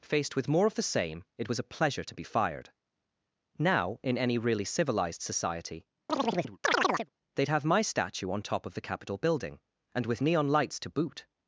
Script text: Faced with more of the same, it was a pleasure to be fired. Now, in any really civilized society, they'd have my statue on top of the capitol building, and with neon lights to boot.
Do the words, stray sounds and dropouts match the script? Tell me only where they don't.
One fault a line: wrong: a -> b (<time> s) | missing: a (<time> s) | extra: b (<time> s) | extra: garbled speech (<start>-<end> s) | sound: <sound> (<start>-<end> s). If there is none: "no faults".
sound: chirp (6.1-7.1 s)